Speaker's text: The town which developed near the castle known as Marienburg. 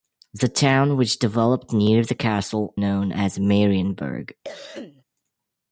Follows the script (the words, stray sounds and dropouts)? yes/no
no